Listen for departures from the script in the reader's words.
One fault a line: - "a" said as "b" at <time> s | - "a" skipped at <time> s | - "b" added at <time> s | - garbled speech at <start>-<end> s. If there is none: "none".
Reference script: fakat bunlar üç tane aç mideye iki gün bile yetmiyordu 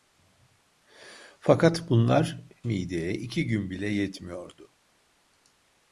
- "üç tane aç" skipped at 2.5 s